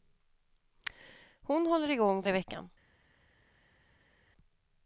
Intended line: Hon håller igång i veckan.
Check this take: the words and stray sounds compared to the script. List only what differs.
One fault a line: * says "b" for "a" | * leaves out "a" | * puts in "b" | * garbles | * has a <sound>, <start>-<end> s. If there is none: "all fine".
all fine